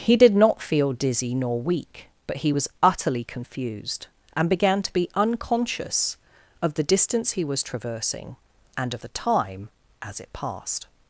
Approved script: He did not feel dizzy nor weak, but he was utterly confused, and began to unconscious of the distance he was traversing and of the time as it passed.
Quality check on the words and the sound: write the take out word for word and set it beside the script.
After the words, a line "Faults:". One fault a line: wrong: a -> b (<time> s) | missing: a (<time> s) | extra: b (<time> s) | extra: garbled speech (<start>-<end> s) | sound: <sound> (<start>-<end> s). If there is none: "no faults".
He did not feel dizzy nor weak, but he was utterly confused, and began to be unconscious of the distance he was traversing and of the time as it passed.
Faults:
extra: be (4.9 s)